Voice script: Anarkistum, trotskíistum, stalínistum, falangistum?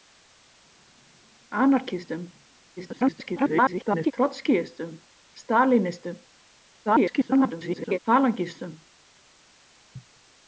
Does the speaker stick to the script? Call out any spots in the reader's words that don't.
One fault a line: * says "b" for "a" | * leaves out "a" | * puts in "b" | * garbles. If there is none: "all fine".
* garbles
* garbles